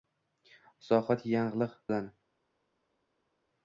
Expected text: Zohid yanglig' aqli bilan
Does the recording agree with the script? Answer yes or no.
no